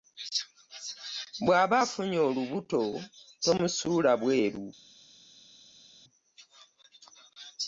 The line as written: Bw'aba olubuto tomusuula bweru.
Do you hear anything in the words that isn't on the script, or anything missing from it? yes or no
yes